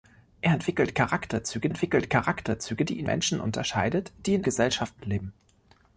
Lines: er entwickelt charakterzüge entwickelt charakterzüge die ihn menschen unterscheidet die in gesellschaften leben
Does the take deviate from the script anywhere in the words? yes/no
no